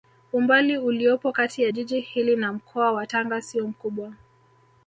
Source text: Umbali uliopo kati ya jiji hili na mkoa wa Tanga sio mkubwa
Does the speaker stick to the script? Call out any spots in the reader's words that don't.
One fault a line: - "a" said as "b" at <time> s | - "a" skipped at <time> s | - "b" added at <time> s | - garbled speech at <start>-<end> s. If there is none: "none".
none